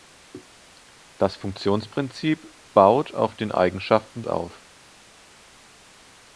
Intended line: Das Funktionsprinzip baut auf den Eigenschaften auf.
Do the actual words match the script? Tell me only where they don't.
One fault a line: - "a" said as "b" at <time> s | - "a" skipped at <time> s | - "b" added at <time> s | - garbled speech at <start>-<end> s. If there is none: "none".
none